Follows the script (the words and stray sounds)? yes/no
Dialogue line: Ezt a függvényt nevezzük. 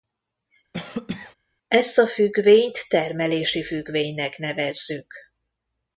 no